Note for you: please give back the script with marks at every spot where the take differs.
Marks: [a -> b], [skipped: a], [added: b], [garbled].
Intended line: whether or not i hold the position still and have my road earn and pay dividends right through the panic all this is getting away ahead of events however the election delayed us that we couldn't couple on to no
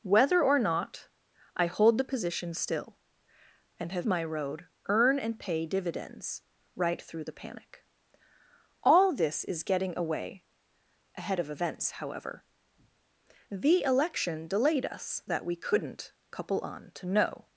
whether or not i hold the position still and have my road earn and pay dividends right through the panic all this is getting away ahead of events however the election delayed us that we couldn't couple on to no